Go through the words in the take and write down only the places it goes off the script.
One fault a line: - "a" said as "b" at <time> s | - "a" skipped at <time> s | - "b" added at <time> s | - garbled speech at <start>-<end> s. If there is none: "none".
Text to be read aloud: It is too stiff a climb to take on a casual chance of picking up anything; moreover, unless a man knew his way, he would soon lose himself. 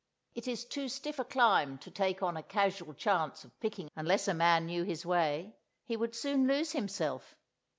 - "up anything moreover" skipped at 3.9 s